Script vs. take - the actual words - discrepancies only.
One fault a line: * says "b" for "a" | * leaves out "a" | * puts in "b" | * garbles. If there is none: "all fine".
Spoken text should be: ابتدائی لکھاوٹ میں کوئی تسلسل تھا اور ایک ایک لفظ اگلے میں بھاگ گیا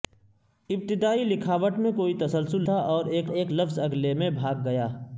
all fine